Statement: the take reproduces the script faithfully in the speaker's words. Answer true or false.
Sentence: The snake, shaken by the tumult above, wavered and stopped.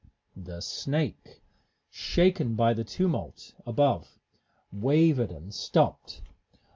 true